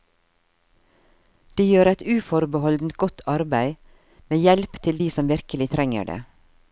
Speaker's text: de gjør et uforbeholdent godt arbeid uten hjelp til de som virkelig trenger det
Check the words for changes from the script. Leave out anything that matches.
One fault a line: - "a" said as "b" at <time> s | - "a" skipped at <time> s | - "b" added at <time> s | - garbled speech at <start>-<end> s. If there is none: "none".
- "uten" said as "med" at 4.3 s